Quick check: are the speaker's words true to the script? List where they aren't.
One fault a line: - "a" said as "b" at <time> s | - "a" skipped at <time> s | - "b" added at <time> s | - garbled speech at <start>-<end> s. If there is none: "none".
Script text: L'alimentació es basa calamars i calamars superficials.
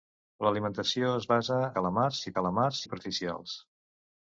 none